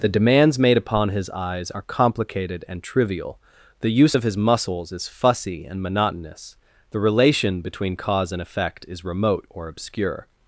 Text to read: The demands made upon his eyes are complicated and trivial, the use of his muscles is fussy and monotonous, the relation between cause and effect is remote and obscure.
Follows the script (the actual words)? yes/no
no